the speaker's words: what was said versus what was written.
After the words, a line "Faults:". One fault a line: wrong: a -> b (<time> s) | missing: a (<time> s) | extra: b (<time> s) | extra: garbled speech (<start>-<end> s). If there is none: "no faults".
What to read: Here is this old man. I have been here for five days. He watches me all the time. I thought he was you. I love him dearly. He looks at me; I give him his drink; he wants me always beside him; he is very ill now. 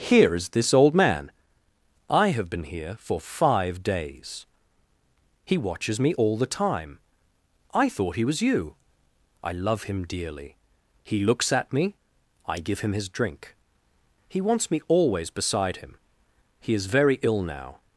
Here is this old man. I have been here for five days. He watches me all the time. I thought he was you. I love him dearly. He looks at me; I give him his drink; he wants me always beside him; he is very ill now.
Faults:
no faults